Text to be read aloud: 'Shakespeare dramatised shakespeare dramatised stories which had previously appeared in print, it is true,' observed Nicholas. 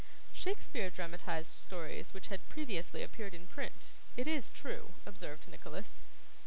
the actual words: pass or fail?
fail